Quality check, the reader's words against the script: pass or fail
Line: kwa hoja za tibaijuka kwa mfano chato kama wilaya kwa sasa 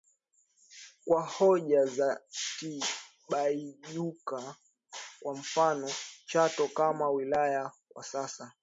pass